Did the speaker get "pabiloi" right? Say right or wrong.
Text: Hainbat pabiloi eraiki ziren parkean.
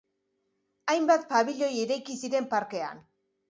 right